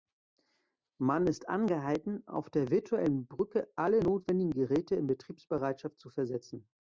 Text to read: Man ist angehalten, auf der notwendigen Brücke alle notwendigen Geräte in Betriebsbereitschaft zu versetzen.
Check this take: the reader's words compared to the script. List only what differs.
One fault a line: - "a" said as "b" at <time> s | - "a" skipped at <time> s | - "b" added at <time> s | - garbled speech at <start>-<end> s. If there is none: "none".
- "notwendigen" said as "virtuellen" at 2.7 s